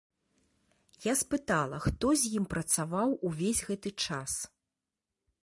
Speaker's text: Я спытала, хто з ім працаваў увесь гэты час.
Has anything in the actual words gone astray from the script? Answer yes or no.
no